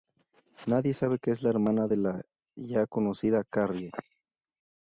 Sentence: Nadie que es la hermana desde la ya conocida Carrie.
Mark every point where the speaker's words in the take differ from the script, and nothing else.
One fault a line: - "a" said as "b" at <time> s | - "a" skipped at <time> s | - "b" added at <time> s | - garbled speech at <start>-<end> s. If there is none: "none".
- "sabe" added at 0.9 s
- "desde" said as "de" at 1.9 s